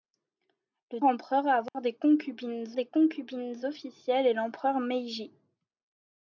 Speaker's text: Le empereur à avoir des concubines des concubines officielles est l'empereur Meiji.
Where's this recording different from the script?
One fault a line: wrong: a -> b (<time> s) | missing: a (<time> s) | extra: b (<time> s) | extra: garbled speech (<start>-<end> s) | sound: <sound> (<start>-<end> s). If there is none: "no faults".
sound: dropout (1.7-1.7 s)